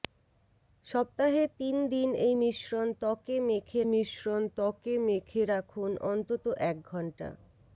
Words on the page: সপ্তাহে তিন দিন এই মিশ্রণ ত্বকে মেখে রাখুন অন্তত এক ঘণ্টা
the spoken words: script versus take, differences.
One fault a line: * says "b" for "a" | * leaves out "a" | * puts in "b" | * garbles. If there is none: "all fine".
* puts in "মিশ্রণ ত্বকে মেখে"